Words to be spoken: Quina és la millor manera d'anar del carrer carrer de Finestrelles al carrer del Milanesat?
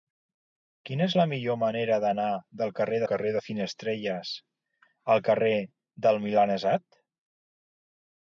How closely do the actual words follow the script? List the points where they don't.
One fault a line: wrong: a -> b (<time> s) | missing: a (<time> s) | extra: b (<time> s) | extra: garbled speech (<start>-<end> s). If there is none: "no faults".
no faults